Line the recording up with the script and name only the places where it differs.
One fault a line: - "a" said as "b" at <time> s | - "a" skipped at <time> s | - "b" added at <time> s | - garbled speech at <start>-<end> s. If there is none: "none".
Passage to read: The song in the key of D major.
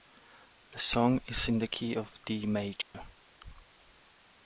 - "is" added at 1.3 s